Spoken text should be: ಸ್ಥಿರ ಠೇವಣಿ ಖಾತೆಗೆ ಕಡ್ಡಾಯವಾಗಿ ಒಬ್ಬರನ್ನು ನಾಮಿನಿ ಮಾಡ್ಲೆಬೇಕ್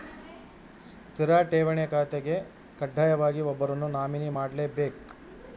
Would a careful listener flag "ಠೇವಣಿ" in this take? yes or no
no